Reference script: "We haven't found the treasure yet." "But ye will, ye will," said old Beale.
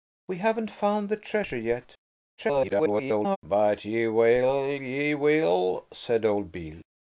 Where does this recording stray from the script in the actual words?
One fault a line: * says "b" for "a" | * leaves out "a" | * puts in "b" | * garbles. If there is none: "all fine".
* garbles